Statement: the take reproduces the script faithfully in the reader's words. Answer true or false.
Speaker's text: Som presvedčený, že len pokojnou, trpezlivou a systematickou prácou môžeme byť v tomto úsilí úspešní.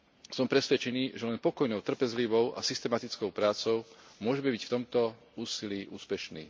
true